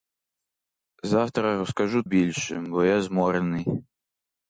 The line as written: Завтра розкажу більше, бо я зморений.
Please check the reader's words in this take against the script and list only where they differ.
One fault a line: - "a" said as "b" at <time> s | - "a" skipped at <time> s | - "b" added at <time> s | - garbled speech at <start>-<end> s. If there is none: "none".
none